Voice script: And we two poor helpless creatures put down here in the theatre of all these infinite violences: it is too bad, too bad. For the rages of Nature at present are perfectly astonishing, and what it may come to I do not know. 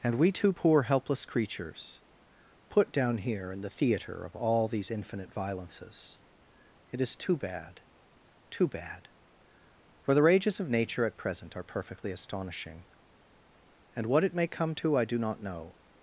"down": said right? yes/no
yes